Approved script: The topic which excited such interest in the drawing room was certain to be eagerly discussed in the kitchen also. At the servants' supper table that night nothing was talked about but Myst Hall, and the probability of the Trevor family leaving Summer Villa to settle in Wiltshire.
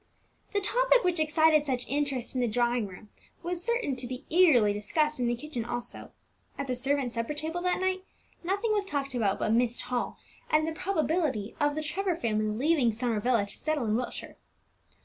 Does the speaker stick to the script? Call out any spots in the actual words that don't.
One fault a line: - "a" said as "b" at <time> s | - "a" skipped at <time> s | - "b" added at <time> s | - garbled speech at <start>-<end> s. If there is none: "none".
none